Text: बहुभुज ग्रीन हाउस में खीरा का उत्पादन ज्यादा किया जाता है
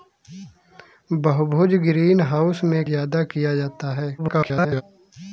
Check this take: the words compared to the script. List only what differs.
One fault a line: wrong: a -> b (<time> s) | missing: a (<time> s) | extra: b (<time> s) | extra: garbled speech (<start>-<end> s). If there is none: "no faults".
missing: खीरा का उत्पादन (2.8 s)
extra: garbled speech (4.2-4.8 s)